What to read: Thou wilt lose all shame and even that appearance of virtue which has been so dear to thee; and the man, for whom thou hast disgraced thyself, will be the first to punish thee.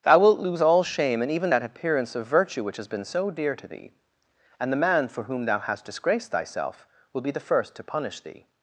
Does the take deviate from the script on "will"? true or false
false